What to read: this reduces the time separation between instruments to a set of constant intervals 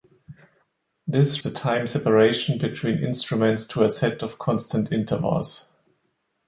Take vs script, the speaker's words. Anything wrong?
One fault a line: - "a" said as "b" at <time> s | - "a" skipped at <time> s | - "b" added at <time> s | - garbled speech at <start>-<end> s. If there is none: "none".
- "reduces" skipped at 1.4 s